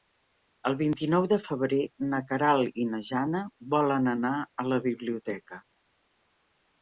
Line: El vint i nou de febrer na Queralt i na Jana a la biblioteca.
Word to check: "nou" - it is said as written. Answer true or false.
true